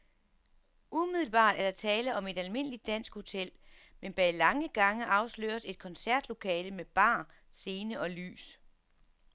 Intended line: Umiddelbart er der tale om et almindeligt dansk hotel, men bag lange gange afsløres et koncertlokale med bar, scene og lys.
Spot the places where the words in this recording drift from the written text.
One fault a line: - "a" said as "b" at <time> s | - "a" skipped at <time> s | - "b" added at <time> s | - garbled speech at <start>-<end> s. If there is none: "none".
none